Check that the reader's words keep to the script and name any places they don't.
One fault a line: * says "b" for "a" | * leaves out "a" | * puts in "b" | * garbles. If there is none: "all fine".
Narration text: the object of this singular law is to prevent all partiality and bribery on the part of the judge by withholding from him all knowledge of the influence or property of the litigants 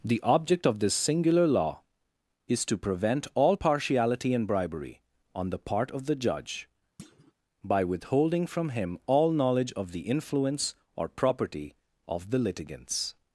all fine